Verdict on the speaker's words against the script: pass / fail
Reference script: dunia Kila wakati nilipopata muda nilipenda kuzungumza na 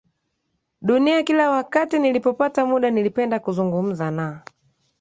pass